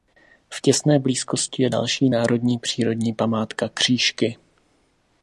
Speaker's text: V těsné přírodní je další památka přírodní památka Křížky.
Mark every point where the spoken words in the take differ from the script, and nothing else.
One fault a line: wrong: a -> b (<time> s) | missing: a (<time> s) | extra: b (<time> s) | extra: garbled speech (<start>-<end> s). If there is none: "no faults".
wrong: přírodní -> blízkosti (1.0 s)
wrong: památka -> národní (2.1 s)